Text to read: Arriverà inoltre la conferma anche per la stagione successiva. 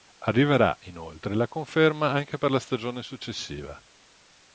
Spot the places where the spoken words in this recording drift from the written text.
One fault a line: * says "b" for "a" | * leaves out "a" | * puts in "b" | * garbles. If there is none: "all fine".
all fine